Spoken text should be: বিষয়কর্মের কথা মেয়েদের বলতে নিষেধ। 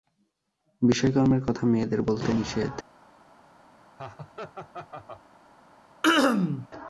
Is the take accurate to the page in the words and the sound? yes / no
no